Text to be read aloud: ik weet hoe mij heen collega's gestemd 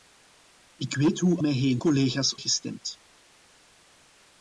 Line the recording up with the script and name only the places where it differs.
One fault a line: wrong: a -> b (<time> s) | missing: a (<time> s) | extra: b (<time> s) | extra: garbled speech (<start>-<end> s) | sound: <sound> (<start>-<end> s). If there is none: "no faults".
no faults